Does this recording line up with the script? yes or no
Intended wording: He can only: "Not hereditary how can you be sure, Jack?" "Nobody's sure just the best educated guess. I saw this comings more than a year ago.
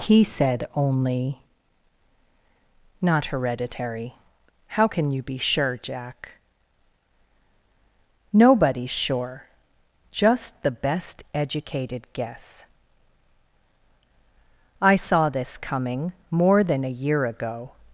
no